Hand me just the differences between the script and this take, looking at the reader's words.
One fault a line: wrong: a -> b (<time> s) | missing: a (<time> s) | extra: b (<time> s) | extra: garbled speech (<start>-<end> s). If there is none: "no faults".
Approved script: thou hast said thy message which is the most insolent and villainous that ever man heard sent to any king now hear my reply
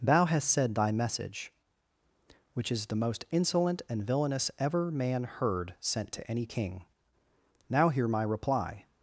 missing: that (4.5 s)